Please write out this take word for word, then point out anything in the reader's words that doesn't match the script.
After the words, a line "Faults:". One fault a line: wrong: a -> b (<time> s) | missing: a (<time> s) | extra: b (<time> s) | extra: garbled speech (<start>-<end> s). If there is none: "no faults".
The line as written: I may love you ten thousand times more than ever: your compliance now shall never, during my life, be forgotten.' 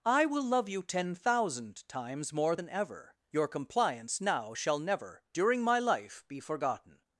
I will love you ten thousand times more than ever: your compliance now shall never, during my life, be forgotten.'
Faults:
wrong: may -> will (0.2 s)